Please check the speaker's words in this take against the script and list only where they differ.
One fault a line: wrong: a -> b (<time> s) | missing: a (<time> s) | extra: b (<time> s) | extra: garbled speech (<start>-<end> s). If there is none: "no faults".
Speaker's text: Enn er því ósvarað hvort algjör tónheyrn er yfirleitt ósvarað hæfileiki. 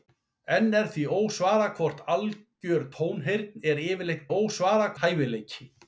no faults